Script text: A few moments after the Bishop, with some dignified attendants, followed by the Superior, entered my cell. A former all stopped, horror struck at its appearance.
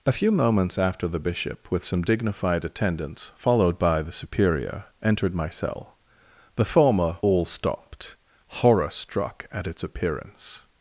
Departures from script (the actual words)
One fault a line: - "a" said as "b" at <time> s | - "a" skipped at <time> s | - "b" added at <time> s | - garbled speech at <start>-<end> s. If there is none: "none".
- "A" said as "The" at 6.5 s